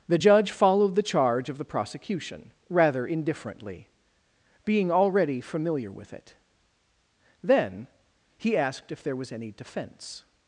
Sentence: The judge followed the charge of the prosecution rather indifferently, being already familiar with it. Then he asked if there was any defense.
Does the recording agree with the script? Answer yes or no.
yes